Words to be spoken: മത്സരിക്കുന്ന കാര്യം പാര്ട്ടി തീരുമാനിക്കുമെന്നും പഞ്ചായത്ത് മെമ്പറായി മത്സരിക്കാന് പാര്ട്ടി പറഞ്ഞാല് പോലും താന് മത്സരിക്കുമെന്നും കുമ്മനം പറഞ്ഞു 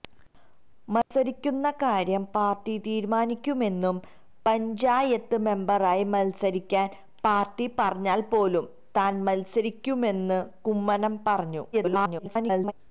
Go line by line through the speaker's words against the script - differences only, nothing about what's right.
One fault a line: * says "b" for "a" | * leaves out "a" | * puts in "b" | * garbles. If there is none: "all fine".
* garbles